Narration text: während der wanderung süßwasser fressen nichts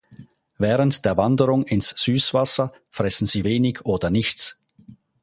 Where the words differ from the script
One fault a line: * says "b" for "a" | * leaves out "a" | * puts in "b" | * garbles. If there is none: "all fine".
* puts in "ins"
* puts in "sie wenig oder"